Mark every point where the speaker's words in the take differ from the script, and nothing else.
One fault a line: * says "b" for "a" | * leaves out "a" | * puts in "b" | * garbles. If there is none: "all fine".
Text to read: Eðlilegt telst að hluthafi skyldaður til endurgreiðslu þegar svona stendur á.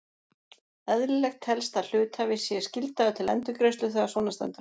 * puts in "sé"